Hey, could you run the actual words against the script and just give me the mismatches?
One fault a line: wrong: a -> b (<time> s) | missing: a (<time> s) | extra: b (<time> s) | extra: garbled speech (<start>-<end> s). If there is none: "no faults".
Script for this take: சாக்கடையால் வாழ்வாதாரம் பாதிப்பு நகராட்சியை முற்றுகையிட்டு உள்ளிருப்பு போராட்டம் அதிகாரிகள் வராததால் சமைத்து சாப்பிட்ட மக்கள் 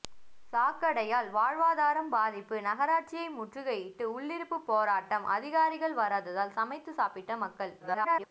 extra: garbled speech (7.8-8.3 s)